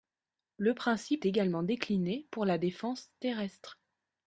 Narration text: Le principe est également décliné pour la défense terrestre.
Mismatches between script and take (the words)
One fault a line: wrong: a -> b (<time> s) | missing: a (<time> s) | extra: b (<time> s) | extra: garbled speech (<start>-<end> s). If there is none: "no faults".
missing: est (1.2 s)